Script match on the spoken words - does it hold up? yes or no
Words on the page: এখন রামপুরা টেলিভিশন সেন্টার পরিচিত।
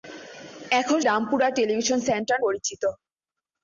yes